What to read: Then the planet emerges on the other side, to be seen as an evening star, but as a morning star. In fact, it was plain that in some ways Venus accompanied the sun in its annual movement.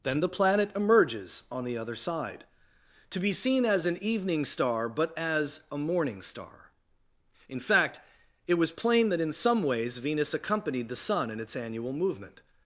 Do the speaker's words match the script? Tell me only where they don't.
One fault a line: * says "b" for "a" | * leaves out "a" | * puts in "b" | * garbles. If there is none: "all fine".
all fine